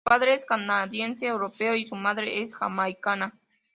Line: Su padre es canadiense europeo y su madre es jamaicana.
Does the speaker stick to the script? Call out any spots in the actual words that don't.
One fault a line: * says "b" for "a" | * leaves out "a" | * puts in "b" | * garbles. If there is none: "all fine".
all fine